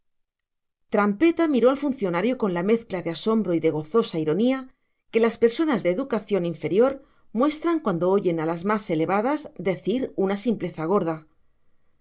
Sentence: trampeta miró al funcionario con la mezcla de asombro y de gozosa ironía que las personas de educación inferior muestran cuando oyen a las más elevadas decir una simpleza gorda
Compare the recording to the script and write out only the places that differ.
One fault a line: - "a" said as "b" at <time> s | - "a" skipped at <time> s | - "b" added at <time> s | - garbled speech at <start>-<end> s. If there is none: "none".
none